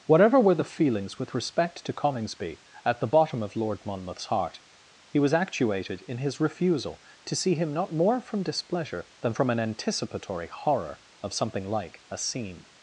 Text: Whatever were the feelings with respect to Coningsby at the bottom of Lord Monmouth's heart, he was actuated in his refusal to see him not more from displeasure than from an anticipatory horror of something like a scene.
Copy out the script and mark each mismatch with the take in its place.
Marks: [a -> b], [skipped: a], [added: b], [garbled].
Whatever were the feelings with respect to Coningsby at the bottom of Lord Monmouth's heart, he was actuated in his refusal to see him not more from displeasure than from an anticipatory horror of something like a scene.